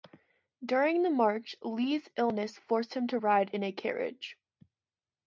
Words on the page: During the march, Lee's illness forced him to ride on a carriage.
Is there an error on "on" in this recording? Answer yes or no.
yes